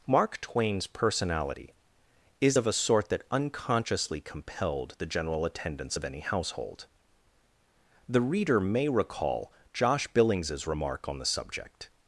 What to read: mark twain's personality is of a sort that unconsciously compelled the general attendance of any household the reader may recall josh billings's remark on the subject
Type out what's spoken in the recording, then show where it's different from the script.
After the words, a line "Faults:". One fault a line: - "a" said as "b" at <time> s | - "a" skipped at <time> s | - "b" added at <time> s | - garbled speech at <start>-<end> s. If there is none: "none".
mark twain's personality is of a sort that unconsciously compelled the general attendance of any household the reader may recall josh billings's remark on the subject
Faults:
none